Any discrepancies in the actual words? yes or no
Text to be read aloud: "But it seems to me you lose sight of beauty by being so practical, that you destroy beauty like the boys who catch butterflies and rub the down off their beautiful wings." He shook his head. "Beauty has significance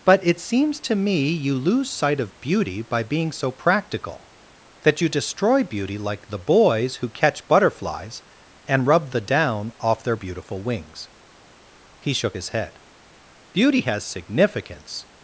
no